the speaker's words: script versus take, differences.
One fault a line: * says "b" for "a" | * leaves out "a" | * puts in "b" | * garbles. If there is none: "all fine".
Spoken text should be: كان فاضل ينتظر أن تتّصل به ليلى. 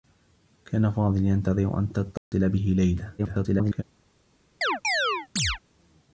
* garbles